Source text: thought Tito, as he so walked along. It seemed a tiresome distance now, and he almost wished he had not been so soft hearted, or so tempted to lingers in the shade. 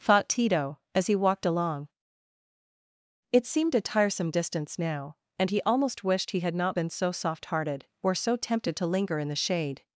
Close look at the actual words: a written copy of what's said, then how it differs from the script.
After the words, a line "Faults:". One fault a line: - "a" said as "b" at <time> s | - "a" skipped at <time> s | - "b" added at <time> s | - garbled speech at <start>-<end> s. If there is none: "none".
thought Tito, as he walked along. It seemed a tiresome distance now, and he almost wished he had not been so soft hearted, or so tempted to linger in the shade.
Faults:
- "so" skipped at 1.1 s
- "lingers" said as "linger" at 8.9 s